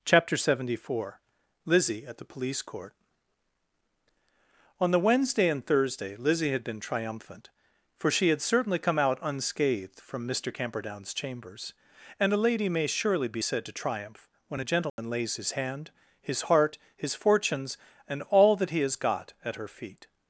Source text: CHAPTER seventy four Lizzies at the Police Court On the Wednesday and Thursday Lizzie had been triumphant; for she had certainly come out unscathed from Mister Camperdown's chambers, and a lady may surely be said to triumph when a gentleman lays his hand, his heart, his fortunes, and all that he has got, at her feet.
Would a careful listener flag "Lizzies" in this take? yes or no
yes